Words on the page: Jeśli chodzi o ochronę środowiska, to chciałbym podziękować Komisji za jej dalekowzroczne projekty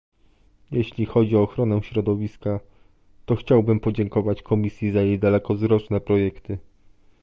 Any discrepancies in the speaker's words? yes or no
no